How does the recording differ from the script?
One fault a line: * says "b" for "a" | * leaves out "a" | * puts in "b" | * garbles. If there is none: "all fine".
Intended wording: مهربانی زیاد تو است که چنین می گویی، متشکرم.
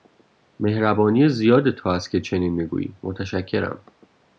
all fine